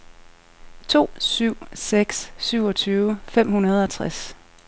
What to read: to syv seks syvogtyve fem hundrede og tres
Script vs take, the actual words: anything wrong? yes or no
no